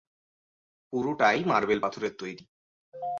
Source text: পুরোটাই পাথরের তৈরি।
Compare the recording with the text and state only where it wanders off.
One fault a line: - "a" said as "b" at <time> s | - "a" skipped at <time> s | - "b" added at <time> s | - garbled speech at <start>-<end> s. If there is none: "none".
- "মার্বেল" added at 1.4 s